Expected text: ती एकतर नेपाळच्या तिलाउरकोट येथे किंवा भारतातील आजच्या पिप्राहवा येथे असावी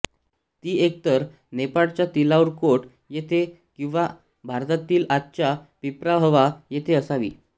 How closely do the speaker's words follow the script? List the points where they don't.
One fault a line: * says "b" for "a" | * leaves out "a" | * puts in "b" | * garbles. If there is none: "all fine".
all fine